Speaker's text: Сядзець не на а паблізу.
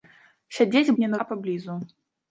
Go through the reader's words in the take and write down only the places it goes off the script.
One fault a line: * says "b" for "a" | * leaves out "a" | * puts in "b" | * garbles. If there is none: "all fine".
all fine